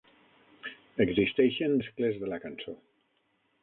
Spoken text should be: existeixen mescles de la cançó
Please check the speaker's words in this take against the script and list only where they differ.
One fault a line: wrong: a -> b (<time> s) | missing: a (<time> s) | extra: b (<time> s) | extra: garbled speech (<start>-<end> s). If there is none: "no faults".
no faults